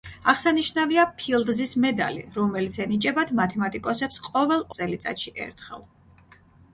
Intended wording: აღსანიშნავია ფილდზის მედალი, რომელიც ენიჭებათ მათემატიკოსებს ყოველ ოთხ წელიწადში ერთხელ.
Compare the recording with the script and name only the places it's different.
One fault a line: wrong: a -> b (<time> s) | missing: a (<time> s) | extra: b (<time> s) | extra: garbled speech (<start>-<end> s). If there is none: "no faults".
missing: ოთხ (4.7 s)